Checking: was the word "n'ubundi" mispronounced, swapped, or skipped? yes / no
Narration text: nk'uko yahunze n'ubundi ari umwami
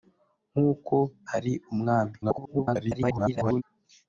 yes